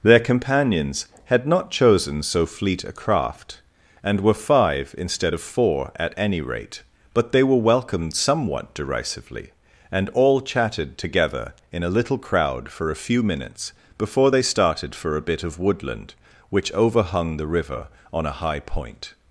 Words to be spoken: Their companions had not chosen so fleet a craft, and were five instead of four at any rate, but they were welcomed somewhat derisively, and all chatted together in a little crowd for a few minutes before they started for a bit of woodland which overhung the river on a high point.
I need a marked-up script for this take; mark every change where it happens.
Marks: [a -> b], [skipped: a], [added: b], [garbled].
Their companions had not chosen so fleet a craft, and were five instead of four at any rate, but they were welcomed somewhat derisively, and all chatted together in a little crowd for a few minutes before they started for a bit of woodland which overhung the river on a high point.